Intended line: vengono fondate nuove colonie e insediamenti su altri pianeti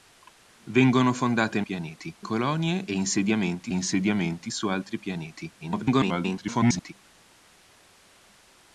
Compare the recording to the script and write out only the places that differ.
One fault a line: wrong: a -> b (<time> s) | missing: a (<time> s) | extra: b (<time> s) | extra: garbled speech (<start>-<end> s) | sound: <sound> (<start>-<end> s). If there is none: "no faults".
wrong: nuove -> pianeti (1.6 s)
extra: insediamenti (3.7 s)
extra: garbled speech (5.6-6.9 s)